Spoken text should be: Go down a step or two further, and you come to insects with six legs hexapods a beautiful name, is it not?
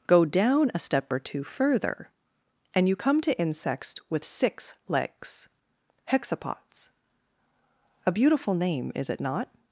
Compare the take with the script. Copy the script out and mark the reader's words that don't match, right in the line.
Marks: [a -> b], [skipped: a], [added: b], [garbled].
Go down a step or two further, and you come to insects with six legs hexapods a beautiful name, is it not?